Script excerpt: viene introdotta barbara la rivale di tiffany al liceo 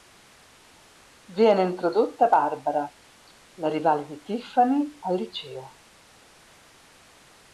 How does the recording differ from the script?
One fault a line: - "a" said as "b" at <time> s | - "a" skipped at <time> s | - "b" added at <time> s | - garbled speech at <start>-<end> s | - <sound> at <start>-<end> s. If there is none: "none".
none